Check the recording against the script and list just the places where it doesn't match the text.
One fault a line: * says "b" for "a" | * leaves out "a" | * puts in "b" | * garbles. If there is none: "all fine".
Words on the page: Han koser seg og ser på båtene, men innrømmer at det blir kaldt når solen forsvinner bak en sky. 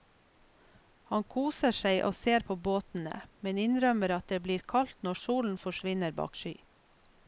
* leaves out "en"